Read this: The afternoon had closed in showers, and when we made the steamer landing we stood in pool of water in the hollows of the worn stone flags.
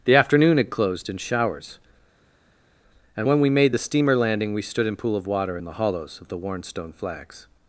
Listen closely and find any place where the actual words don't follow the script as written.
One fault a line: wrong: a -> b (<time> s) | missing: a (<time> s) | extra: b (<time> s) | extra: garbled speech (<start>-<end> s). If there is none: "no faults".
no faults